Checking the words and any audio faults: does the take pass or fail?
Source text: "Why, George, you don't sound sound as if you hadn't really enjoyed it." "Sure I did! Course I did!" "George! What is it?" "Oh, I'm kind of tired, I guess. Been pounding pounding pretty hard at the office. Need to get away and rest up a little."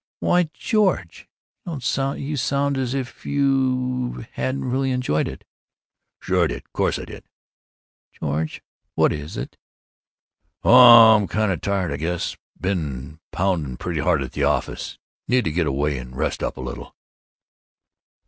fail